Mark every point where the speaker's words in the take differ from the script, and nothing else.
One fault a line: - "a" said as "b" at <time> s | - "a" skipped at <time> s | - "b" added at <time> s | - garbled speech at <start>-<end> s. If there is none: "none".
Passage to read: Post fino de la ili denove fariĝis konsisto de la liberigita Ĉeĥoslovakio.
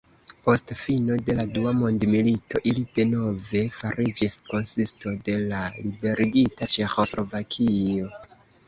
- "dua mondmilito" added at 1.6 s